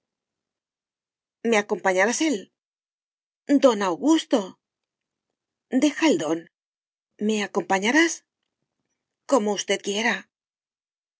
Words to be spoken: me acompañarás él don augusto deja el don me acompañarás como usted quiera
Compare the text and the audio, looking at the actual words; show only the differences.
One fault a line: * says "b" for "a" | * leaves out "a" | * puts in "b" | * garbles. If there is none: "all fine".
all fine